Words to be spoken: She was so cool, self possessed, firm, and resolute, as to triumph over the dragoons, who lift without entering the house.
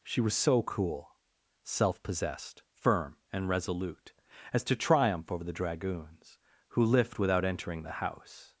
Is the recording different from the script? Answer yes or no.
no